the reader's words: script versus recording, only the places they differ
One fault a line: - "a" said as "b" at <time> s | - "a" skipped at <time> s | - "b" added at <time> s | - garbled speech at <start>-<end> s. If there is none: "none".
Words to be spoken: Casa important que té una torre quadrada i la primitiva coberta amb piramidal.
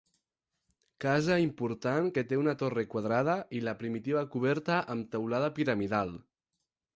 - "teulada" added at 5.2 s